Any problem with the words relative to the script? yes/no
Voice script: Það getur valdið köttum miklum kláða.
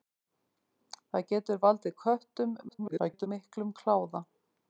yes